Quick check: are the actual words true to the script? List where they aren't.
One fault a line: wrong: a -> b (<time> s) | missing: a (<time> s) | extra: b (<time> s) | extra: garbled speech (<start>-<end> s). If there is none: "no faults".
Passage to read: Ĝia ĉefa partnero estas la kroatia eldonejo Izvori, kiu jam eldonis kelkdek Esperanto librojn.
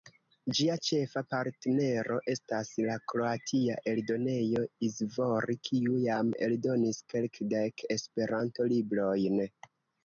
no faults